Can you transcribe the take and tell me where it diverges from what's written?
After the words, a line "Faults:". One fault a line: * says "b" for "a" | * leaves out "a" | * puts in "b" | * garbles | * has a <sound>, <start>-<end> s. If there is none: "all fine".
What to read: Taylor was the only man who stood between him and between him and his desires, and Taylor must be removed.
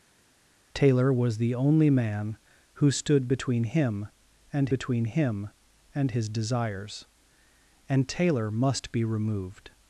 Taylor was the only man who stood between him and between him and his desires, and Taylor must be removed.
Faults:
all fine